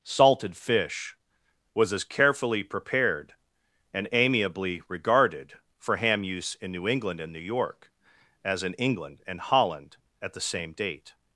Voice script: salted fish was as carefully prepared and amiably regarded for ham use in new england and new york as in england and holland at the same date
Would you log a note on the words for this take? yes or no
no